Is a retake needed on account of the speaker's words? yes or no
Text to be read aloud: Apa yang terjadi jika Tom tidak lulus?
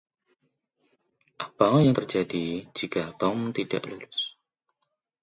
no